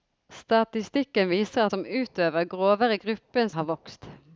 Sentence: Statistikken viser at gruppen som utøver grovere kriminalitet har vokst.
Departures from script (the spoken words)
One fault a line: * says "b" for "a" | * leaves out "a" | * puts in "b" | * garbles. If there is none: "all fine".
* leaves out "at gruppen"
* says "gruppen" for "kriminalitet"